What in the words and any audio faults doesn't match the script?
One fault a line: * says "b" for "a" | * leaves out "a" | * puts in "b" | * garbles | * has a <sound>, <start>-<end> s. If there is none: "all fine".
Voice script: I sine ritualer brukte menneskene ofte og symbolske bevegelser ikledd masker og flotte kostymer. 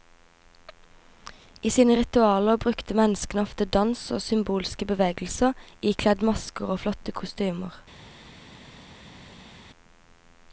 * puts in "dans"